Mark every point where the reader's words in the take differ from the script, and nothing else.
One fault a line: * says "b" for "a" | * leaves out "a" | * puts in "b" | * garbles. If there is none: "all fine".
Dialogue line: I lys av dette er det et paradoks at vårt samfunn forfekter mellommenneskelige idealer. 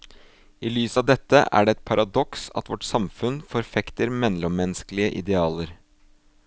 all fine